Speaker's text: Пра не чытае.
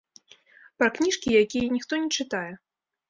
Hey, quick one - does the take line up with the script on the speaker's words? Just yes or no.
no